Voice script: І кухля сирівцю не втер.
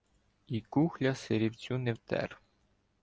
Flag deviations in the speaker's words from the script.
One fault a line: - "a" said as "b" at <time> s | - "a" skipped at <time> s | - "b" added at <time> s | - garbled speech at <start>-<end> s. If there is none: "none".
none